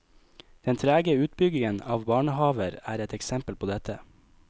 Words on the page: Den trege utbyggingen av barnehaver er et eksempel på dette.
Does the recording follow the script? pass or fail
pass